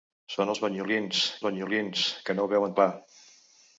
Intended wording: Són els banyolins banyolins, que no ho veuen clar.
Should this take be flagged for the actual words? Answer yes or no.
no